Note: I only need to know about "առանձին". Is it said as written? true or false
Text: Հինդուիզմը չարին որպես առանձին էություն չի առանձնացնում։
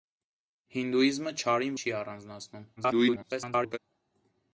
false